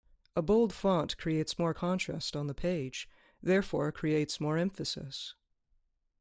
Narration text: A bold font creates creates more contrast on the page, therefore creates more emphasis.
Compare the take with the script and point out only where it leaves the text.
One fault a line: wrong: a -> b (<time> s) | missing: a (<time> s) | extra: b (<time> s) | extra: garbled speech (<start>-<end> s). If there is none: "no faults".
missing: creates (1.6 s)